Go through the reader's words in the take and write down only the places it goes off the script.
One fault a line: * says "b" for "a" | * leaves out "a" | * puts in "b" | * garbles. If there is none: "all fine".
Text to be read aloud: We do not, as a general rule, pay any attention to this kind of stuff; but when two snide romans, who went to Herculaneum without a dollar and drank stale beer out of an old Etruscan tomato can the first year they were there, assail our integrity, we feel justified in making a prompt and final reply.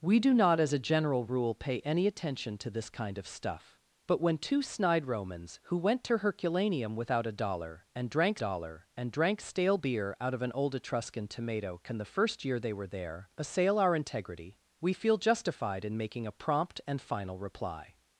* puts in "dollar and drank"